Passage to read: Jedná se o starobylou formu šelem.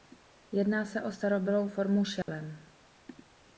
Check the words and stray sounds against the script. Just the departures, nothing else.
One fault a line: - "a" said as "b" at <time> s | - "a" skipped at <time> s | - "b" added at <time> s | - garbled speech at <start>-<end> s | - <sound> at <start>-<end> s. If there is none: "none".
- dropout at 2.2-2.3 s